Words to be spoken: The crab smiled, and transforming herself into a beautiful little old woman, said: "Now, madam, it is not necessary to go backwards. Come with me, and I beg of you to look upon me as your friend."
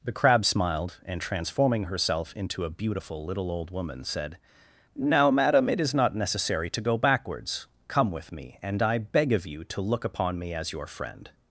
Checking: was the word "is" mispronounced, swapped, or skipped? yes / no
no